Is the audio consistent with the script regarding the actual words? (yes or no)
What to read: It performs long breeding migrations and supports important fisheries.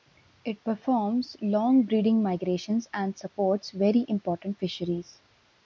no